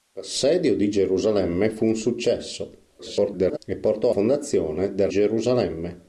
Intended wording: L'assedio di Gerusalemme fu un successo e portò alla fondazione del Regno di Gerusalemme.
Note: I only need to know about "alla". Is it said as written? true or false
false